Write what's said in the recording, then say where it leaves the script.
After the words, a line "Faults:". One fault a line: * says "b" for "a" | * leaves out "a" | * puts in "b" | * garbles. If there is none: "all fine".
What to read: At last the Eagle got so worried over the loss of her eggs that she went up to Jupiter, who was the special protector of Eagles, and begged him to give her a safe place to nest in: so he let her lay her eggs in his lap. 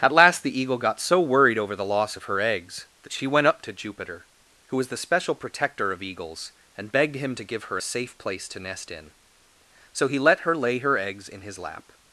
At last the Eagle got so worried over the loss of her eggs that she went up to Jupiter, who was the special protector of Eagles, and begged him to give her a safe place to nest in: so he let her lay her eggs in his lap.
Faults:
all fine